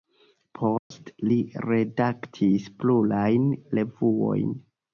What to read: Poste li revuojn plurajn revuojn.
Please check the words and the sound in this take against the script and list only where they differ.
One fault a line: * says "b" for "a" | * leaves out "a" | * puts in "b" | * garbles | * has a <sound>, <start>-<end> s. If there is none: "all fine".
* has a dropout, 0.8-0.9 s
* says "redaktis" for "revuojn"